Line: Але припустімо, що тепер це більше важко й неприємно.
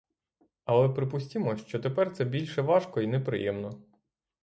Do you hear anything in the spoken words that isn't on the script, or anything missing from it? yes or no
no